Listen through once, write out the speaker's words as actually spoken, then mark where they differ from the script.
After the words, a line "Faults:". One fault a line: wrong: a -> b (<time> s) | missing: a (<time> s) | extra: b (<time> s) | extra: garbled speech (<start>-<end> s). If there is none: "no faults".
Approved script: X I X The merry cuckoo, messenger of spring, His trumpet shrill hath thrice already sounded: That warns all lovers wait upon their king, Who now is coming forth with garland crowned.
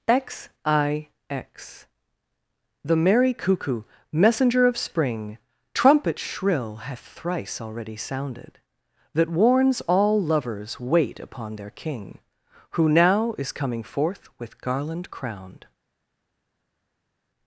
X I X The merry cuckoo, messenger of spring, trumpet shrill hath thrice already sounded: That warns all lovers wait upon their king, Who now is coming forth with garland crowned.
Faults:
missing: His (5.4 s)